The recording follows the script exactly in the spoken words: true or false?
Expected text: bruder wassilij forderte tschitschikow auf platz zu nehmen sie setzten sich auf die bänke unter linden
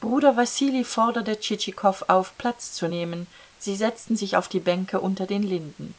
false